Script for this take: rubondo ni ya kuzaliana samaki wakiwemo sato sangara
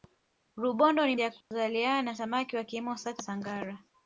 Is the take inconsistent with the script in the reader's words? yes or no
no